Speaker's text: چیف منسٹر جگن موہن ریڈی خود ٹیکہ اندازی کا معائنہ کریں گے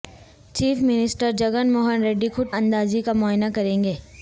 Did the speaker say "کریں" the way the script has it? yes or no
yes